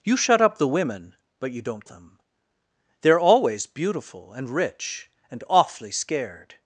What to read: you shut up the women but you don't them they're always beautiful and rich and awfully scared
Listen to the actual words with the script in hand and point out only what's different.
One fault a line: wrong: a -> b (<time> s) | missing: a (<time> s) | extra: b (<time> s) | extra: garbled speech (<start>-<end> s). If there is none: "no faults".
no faults